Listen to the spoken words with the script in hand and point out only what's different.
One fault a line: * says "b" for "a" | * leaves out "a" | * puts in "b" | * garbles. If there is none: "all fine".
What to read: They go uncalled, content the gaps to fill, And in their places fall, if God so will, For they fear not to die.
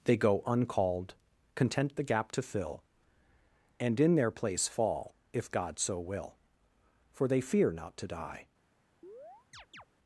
* says "gap" for "gaps"
* says "place" for "places"